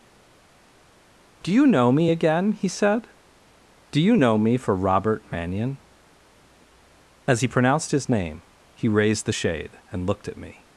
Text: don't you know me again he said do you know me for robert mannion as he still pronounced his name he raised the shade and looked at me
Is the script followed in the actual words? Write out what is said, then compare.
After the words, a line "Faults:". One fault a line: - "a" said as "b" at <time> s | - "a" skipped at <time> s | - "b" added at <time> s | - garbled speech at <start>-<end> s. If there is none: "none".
do you know me again he said do you know me for robert mannion as he pronounced his name he raised the shade and looked at me
Faults:
- "don't" said as "do" at 1.4 s
- "still" skipped at 7.5 s